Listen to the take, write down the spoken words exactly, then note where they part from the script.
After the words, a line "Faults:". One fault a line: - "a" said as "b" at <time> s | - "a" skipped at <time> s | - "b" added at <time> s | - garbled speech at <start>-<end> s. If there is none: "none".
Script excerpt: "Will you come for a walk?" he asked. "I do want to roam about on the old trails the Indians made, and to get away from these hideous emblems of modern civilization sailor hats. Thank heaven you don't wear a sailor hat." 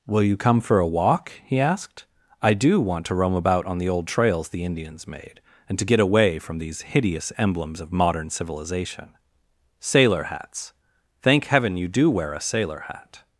"Will you come for a walk?" he asked. "I do want to roam about on the old trails the Indians made, and to get away from these hideous emblems of modern civilization sailor hats. Thank heaven you do wear a sailor hat."
Faults:
- "don't" said as "do" at 11.9 s